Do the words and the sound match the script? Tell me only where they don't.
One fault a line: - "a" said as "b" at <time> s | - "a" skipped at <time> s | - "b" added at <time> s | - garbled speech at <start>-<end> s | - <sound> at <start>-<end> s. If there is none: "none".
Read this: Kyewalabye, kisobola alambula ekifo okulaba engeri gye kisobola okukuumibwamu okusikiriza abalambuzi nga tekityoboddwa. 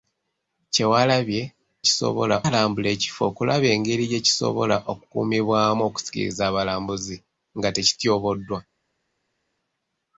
none